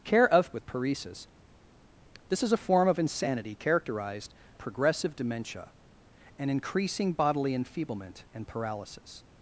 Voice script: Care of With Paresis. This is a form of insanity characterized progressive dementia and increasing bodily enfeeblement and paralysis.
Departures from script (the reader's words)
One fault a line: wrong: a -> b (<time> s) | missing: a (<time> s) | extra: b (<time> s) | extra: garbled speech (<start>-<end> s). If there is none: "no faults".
no faults